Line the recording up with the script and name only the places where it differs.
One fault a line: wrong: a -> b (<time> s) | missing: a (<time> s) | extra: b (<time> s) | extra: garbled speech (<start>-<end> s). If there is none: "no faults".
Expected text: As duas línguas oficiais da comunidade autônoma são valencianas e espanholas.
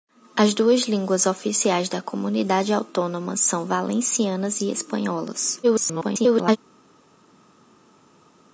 extra: garbled speech (5.6-6.6 s)